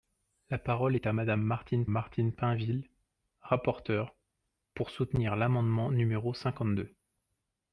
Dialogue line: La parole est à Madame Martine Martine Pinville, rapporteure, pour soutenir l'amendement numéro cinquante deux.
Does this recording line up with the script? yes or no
yes